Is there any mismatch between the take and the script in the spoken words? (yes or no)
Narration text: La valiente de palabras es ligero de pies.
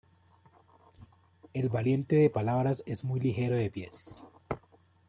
yes